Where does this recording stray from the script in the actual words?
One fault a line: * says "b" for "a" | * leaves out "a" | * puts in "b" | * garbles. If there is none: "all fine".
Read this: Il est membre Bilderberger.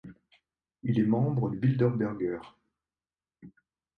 all fine